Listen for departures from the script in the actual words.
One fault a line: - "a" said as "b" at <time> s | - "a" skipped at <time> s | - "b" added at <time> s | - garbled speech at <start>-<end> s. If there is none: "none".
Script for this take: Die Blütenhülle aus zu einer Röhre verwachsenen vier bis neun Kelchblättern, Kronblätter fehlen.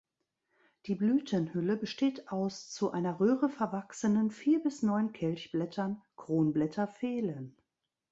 - "besteht" added at 1.8 s